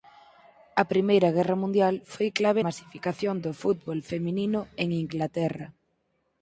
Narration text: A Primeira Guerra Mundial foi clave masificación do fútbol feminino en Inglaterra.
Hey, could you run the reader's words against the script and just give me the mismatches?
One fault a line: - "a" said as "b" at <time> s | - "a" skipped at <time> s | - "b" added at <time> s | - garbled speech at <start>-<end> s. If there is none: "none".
none